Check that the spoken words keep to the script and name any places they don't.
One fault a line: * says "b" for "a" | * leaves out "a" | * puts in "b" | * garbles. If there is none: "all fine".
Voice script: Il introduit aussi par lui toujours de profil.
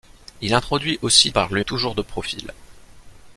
all fine